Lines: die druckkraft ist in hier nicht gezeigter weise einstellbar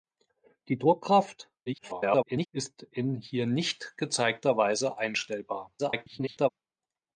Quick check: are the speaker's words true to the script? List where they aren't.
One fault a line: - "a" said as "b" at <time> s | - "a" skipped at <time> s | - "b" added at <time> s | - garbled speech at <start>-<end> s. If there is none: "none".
- garbled speech at 1.7-2.5 s
- garbled speech at 5.8-6.5 s